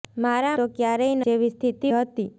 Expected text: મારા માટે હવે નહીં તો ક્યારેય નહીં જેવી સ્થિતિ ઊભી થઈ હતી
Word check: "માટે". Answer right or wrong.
wrong